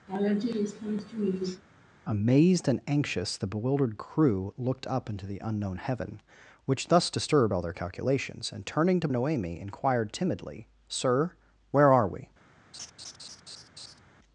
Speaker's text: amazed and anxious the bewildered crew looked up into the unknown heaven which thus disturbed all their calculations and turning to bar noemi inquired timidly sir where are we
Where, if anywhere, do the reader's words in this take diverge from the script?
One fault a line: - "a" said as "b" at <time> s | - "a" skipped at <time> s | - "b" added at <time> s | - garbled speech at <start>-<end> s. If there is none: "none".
- "bar" skipped at 9.1 s